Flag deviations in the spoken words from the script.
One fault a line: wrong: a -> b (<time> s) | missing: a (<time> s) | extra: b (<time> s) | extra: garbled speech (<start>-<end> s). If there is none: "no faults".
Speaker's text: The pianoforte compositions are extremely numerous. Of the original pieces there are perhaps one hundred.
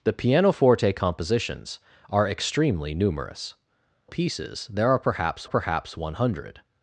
missing: Of the original (3.5 s)
extra: perhaps (5.5 s)